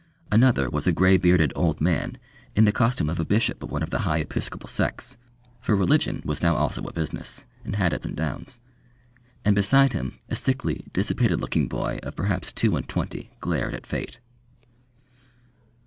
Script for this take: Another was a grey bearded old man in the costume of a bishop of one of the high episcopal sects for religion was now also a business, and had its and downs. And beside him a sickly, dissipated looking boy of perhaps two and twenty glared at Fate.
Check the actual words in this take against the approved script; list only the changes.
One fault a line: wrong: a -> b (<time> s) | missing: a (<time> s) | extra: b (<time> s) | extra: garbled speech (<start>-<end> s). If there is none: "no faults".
no faults